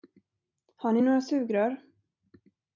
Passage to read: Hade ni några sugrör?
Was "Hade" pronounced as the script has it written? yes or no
no